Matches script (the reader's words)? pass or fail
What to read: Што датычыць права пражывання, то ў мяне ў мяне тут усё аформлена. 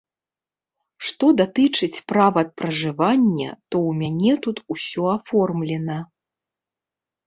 fail